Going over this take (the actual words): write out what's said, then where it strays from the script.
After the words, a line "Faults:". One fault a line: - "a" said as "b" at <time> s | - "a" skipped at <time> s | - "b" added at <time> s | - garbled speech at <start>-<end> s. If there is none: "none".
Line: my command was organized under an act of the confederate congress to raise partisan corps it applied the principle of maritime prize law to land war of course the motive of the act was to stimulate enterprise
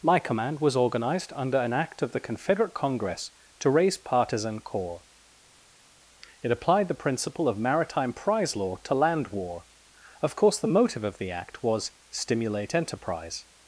my command was organized under an act of the confederate congress to raise partisan corps it applied the principle of maritime prize law to land war of course the motive of the act was stimulate enterprise
Faults:
- "to" skipped at 11.9 s